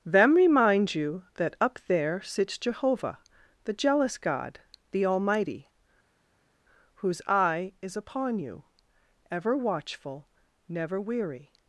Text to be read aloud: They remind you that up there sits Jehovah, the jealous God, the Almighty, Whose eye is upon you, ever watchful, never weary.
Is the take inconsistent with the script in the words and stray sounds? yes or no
yes